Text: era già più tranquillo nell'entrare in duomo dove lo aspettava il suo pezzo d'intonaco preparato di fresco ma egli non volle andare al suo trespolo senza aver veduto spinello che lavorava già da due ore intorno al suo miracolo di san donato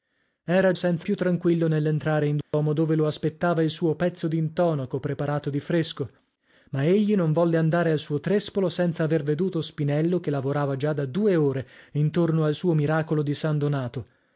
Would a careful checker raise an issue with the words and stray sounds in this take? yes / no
yes